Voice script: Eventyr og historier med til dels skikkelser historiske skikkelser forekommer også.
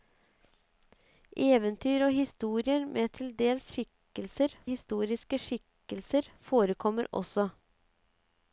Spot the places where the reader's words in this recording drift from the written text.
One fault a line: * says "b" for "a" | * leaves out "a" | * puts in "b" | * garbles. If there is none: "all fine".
all fine